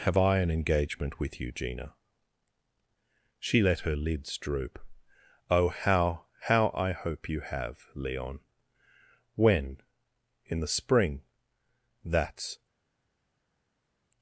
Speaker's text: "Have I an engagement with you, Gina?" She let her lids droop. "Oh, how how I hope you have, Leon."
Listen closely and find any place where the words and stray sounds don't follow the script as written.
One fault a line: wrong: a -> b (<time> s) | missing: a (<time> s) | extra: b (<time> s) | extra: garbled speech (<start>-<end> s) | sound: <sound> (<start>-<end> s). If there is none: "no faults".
extra: When In the spring That's (9.3 s)